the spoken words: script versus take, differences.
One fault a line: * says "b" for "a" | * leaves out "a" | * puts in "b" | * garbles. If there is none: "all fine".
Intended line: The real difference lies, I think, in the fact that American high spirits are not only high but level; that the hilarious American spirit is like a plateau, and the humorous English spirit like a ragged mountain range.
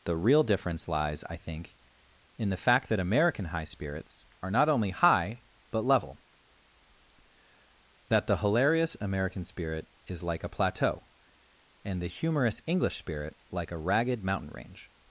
all fine